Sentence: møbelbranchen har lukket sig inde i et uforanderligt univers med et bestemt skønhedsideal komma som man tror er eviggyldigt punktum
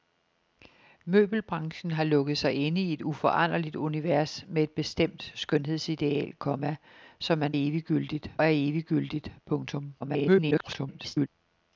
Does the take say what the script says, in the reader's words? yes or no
no